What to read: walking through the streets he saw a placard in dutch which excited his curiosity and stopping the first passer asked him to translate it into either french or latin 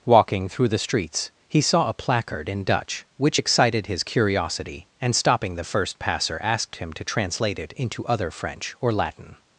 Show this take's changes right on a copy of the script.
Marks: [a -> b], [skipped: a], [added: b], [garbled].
walking through the streets he saw a placard in dutch which excited his curiosity and stopping the first passer asked him to translate it into [either -> other] french or latin